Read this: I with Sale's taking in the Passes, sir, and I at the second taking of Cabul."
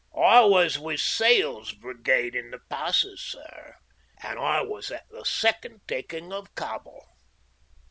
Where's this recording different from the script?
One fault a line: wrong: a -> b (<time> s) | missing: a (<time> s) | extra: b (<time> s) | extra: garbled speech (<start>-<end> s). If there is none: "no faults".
extra: was (0.5 s)
wrong: taking -> brigade (1.7 s)
extra: was (4.6 s)